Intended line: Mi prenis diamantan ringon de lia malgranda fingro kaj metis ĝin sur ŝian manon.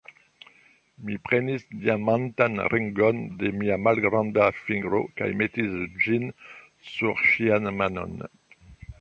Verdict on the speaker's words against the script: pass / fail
fail